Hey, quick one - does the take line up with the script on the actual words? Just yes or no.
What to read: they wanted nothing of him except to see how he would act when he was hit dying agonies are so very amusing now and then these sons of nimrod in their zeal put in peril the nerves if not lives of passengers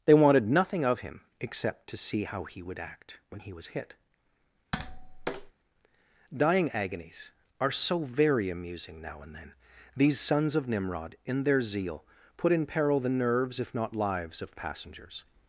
yes